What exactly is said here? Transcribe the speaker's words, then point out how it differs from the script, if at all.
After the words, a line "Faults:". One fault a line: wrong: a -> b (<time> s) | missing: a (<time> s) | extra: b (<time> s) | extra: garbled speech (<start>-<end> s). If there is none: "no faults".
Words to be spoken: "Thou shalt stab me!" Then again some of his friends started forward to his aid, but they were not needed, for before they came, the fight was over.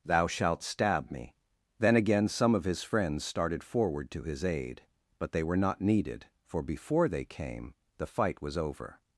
"Thou shalt stab me!" Then again some of his friends started forward to his aid, but they were not needed, for before they came, the fight was over.
Faults:
no faults